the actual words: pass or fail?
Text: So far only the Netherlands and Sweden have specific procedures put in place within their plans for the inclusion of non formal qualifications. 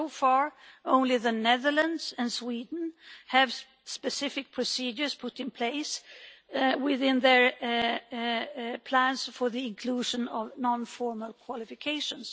pass